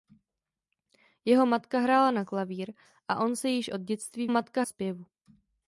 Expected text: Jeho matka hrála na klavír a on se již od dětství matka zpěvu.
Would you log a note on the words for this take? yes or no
no